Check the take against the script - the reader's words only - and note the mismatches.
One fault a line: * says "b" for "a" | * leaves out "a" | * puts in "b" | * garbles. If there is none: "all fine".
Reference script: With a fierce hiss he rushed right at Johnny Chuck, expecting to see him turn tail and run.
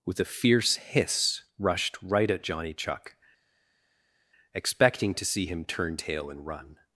* leaves out "he"